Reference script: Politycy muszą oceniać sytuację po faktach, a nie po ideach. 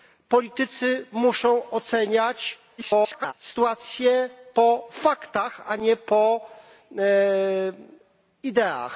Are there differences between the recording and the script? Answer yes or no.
yes